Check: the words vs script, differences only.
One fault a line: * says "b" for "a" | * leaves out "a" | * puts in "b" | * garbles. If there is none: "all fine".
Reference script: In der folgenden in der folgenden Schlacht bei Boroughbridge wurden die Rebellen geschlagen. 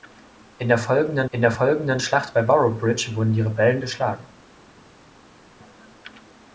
all fine